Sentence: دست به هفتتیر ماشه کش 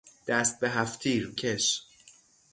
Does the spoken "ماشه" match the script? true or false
false